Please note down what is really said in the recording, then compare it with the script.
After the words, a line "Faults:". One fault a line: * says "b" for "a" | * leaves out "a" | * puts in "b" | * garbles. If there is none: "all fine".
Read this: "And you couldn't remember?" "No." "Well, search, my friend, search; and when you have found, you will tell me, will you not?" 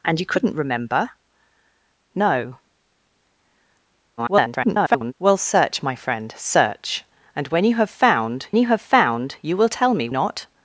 "And you couldn't remember?" "No." [garbled] "Well, search, my friend, search; and when you have found you have found, you will tell me, not?"
Faults:
* garbles
* puts in "have found you"
* leaves out "will you"